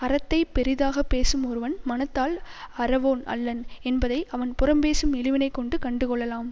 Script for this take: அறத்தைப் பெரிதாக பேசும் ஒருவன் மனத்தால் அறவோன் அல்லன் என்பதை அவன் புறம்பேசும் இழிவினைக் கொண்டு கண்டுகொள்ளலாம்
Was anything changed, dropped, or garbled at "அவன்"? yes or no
no